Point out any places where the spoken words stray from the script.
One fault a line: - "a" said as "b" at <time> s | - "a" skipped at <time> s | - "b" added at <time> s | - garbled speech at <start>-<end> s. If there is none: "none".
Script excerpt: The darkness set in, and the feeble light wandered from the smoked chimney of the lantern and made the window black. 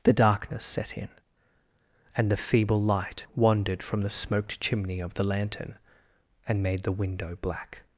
none